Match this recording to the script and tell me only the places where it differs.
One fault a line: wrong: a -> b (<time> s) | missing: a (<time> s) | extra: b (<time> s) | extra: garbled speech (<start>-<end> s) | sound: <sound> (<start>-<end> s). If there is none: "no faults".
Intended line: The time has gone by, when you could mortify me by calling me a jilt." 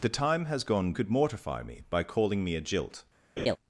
missing: by when you (0.9 s)
sound: laugh (3.4-3.6 s)